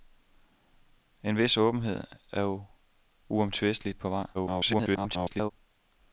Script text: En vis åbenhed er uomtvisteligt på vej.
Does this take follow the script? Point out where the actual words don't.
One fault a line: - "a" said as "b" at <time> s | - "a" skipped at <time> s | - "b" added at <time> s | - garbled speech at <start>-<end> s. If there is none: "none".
- garbled speech at 4.3-5.5 s